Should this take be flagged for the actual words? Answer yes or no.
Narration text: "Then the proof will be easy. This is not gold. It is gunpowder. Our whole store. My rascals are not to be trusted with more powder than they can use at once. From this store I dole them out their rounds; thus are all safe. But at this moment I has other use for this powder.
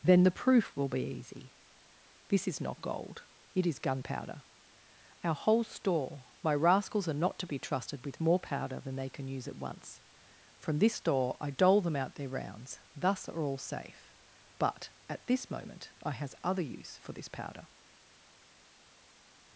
no